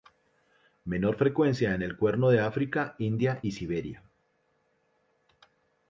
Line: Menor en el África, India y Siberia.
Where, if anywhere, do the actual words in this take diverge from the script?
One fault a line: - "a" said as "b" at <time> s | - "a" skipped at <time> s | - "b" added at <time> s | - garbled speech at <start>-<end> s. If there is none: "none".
- "frecuencia" added at 1.1 s
- "Cuerno de" added at 1.9 s